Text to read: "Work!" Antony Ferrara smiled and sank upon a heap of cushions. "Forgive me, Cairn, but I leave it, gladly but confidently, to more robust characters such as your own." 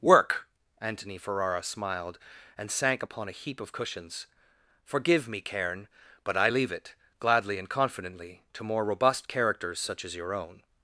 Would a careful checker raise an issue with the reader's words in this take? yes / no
yes